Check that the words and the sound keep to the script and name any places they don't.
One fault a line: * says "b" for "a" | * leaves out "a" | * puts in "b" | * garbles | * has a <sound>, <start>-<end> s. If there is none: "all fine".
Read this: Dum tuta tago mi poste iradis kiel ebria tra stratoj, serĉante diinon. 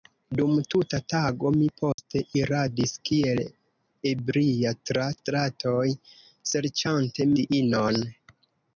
* has a dropout, 1.9-2.0 s